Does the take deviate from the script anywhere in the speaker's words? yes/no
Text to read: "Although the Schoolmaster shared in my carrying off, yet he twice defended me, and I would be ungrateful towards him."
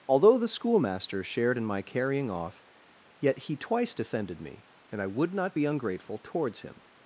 yes